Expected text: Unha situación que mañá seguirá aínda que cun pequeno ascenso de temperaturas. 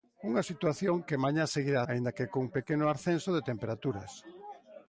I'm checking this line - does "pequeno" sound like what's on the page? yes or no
yes